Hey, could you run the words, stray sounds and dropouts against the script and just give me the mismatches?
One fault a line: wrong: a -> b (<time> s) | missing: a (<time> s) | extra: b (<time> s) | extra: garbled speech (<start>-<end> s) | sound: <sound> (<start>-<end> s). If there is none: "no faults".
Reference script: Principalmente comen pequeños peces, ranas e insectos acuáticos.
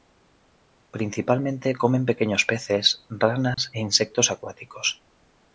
sound: dropout (3.5-3.6 s)